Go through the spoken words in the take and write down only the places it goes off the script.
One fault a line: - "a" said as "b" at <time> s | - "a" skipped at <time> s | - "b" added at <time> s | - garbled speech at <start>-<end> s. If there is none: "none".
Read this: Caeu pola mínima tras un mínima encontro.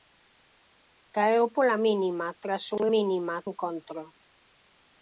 none